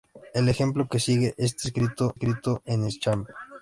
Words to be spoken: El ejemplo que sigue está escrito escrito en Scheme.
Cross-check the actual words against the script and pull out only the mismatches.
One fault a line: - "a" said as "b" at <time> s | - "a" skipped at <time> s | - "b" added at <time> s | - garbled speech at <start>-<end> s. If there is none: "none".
none